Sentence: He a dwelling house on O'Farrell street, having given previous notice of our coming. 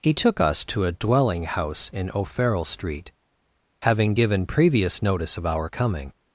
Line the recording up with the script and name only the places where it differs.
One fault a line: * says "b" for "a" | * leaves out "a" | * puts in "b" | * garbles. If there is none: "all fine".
* puts in "took us to"
* says "in" for "on"